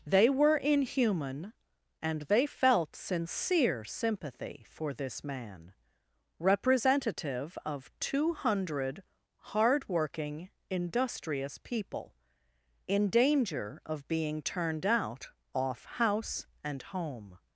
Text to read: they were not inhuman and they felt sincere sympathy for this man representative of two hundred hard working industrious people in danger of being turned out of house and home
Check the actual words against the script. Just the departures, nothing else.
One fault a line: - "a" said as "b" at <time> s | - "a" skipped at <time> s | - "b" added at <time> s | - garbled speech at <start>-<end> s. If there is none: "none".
- "not" skipped at 0.6 s
- "of" said as "off" at 15.5 s